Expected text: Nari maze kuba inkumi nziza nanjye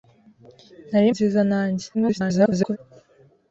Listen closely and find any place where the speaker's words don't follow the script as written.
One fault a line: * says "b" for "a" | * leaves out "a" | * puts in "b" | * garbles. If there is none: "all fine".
* leaves out "maze kuba inkumi"
* garbles